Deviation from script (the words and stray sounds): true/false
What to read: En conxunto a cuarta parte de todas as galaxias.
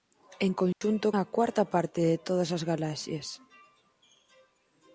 true